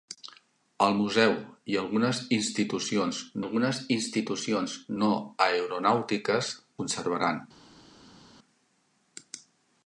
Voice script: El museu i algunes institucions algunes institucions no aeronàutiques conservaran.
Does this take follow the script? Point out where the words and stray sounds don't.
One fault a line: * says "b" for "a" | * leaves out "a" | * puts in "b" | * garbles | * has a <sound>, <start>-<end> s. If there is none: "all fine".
all fine